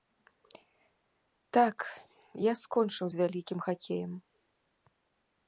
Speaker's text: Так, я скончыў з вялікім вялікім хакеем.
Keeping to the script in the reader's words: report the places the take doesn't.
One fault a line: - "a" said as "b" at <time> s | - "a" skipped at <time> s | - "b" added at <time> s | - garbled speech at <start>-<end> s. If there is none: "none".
- "вялікім" skipped at 3.6 s